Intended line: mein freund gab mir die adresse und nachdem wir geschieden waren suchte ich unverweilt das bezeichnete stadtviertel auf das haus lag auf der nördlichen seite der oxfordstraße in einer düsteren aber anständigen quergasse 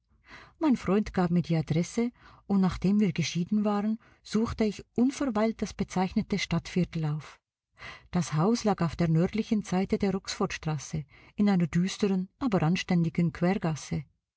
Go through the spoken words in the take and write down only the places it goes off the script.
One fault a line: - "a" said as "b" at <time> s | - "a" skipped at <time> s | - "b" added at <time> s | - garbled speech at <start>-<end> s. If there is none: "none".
none